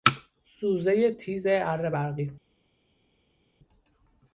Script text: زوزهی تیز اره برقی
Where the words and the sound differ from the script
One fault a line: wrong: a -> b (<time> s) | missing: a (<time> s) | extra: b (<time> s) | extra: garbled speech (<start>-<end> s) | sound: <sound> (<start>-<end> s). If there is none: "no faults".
no faults